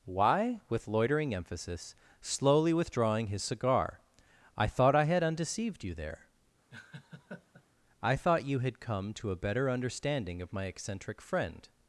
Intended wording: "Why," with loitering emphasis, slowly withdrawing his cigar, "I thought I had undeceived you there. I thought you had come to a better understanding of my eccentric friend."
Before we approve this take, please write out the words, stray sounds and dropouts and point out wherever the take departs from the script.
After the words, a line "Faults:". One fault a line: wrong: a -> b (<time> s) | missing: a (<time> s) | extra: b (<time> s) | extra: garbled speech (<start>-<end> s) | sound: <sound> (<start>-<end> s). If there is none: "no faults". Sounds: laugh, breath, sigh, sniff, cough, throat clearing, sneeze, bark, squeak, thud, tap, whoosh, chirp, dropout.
"Why," with loitering emphasis, slowly withdrawing his cigar, "I thought I had undeceived you there. I thought you had come to a better understanding of my eccentric friend."
Faults:
sound: laugh (6.7-7.7 s)